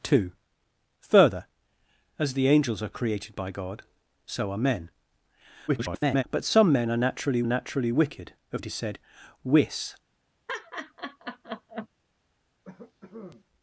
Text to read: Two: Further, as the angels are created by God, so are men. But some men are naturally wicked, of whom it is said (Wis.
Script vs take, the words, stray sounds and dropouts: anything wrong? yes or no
yes